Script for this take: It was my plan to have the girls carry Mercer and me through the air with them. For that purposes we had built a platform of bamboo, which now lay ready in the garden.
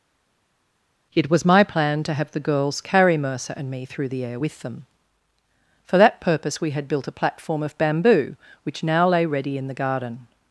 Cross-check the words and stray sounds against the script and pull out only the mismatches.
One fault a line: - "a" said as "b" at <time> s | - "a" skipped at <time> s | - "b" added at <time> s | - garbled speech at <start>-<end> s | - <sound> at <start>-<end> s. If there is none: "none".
- "purposes" said as "purpose" at 6.2 s